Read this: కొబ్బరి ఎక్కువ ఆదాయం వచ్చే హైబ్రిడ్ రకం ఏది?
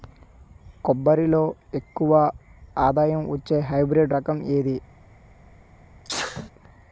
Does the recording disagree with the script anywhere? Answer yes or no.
yes